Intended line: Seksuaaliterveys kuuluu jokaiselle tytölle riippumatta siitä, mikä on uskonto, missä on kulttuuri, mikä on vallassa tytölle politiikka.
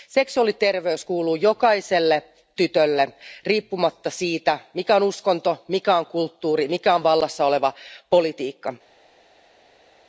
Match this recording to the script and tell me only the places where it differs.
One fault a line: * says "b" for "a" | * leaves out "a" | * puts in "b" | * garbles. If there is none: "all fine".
* says "mikä" for "missä"
* says "oleva" for "tytölle"